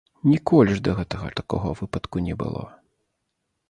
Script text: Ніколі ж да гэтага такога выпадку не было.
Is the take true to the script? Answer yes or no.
yes